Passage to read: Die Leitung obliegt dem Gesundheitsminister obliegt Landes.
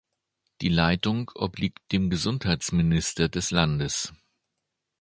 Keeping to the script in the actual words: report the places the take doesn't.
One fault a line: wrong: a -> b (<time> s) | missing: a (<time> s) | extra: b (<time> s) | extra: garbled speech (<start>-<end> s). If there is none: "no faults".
wrong: obliegt -> des (3.3 s)